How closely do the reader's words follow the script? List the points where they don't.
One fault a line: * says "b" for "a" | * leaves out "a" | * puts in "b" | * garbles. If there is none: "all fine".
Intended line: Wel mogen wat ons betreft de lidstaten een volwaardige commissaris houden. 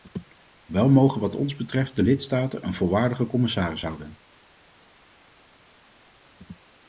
all fine